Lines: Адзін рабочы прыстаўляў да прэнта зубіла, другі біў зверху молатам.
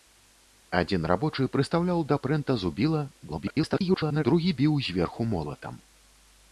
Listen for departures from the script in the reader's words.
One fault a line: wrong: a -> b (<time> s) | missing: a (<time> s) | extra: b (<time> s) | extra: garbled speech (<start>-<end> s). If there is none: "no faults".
extra: garbled speech (3.3-4.2 s)